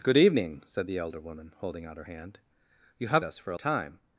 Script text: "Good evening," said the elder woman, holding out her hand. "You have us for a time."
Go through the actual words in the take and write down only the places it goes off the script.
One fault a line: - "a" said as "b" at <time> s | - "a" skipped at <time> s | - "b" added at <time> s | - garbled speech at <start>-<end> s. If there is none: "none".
none